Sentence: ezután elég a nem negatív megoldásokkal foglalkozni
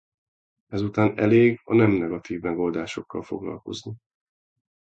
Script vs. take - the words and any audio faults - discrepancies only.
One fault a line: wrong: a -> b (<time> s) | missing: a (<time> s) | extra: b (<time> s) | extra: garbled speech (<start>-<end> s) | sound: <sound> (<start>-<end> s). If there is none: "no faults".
no faults